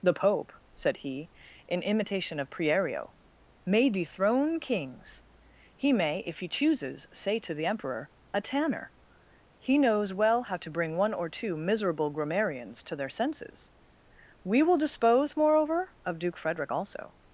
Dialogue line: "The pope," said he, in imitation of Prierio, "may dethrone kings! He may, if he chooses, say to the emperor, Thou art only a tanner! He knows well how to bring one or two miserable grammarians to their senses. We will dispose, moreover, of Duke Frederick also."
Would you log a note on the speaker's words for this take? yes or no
yes